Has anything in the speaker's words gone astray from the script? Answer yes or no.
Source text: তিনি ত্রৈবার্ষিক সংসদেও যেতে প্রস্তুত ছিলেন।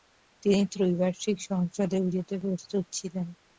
no